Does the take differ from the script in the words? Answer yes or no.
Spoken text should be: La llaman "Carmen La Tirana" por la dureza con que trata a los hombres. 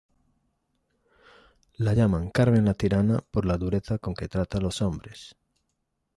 no